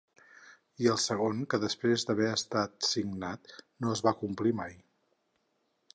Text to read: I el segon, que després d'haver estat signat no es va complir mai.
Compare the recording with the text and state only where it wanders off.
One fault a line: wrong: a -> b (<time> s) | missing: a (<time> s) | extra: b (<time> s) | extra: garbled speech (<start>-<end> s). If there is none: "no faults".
no faults